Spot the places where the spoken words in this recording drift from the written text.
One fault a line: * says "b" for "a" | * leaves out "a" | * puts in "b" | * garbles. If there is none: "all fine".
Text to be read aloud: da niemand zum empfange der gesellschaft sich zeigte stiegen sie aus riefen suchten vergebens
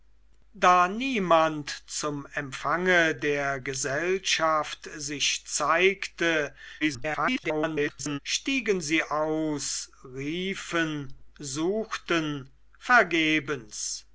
* garbles